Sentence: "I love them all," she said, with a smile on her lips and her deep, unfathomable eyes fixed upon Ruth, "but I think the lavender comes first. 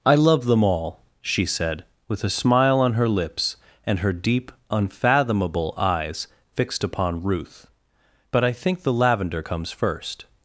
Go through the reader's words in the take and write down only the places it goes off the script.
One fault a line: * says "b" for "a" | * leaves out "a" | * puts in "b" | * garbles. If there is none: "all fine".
all fine